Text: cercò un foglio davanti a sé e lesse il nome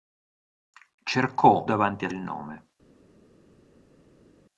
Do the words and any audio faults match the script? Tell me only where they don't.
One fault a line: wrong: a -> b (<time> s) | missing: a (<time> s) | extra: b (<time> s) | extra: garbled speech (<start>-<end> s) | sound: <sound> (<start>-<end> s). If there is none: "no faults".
missing: un foglio (1.7 s)
missing: sé e lesse (2.1 s)